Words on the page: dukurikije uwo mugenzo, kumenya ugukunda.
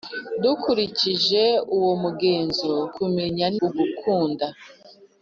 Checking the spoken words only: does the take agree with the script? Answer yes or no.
yes